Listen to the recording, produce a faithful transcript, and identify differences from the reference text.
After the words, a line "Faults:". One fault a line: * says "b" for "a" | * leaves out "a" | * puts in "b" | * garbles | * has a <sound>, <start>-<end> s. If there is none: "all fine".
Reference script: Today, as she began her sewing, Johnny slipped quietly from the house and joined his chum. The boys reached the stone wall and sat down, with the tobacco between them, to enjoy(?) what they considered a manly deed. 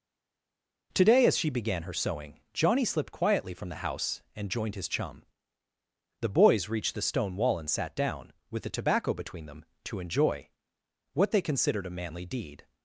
Today, as she began her sewing, Johnny slipped quietly from the house and joined his chum. The boys reached the stone wall and sat down, with the tobacco between them, to enjoy(?) what they considered a manly deed.
Faults:
all fine